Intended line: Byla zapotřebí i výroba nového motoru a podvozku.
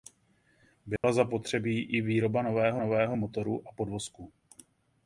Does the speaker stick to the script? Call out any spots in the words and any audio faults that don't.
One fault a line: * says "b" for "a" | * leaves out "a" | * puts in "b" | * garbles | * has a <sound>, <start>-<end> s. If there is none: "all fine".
* has a dropout, 1.0-1.0 s
* puts in "nového"